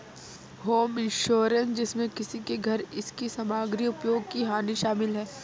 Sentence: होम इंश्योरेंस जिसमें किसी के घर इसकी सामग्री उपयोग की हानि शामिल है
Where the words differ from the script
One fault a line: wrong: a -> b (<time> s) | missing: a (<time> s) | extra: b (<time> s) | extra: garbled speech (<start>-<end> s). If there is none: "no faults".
no faults